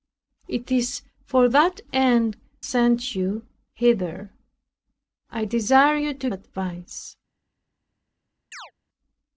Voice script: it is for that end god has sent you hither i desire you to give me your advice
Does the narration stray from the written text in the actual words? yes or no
yes